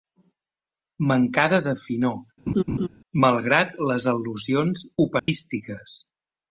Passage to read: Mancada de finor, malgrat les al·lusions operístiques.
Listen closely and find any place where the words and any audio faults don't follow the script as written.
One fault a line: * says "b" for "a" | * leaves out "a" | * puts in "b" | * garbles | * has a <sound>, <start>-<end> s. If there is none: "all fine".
* has a laugh, 2.5-2.9 s
* has a dropout, 5.2-5.3 s